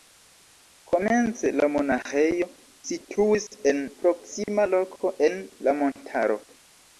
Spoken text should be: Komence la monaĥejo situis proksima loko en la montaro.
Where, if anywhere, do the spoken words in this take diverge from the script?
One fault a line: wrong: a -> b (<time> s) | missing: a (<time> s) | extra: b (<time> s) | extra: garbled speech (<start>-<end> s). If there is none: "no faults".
extra: en (3.7 s)